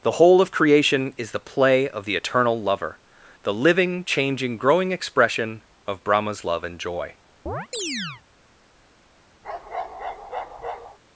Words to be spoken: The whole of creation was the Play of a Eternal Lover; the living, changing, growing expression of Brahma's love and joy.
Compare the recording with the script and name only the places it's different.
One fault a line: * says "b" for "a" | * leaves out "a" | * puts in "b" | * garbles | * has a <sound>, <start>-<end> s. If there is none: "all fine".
* says "is" for "was"
* says "the" for "a"
* has a chirp, 7.5-8.2 s
* has a bark, 9.4-11.0 s